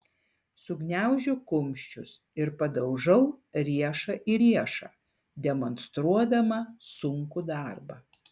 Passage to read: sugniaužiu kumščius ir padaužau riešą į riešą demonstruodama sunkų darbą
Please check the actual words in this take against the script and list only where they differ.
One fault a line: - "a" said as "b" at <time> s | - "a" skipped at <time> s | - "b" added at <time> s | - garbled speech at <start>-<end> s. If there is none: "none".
none